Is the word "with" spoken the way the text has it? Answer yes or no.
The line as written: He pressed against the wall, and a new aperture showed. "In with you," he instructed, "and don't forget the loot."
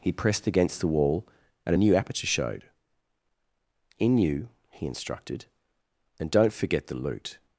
no